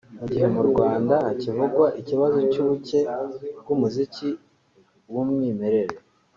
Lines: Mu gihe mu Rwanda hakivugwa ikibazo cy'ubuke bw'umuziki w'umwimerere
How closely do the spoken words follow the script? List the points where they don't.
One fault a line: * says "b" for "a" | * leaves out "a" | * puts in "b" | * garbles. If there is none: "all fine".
all fine